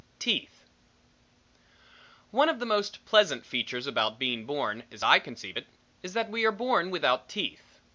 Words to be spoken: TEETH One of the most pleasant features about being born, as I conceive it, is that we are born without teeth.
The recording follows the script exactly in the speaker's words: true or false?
true